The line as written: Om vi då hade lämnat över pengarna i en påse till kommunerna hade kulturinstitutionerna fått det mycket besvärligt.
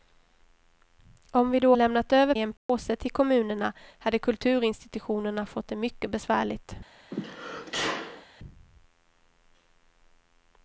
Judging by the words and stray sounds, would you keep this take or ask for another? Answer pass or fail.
fail